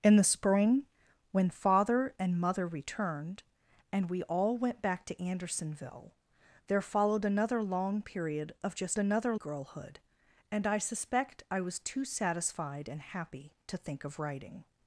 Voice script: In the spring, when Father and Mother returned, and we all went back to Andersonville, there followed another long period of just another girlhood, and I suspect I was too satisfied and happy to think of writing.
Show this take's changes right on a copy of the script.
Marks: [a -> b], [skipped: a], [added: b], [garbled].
In the spring, when Father and Mother returned, and we all went back to Andersonville, there followed another long period of just another girlhood, and I suspect I was too satisfied and happy to think of writing.